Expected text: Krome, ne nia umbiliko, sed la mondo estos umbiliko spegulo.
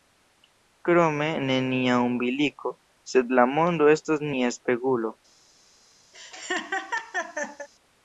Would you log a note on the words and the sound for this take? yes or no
yes